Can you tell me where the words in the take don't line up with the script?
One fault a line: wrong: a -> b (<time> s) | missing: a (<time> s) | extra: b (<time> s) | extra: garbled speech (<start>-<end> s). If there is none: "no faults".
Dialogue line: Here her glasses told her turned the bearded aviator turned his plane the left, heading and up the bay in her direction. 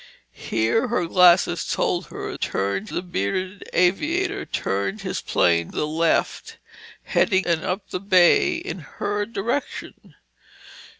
no faults